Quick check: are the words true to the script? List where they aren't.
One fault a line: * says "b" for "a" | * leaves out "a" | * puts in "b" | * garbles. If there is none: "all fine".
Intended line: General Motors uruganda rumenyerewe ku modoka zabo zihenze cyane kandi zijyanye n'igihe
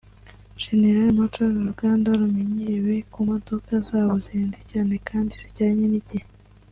all fine